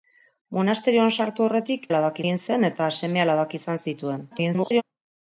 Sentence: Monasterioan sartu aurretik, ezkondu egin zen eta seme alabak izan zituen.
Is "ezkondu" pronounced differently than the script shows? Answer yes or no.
yes